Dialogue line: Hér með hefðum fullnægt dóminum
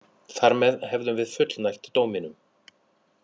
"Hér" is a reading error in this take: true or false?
true